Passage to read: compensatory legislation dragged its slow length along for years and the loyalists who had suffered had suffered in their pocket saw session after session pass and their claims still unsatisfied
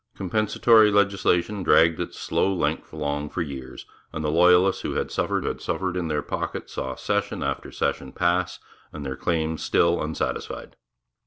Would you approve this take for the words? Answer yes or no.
yes